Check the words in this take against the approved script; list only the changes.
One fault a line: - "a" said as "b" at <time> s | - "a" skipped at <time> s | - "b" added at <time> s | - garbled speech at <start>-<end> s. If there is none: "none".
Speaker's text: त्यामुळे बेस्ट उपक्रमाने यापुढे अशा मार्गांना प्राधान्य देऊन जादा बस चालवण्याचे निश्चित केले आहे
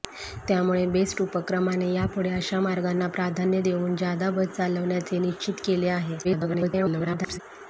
- garbled speech at 6.2-7.4 s